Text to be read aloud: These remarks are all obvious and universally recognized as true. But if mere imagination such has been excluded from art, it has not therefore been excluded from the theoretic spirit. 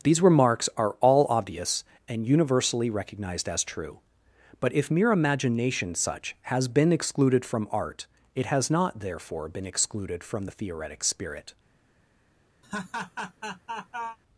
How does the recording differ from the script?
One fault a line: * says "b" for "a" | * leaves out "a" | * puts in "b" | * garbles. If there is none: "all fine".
all fine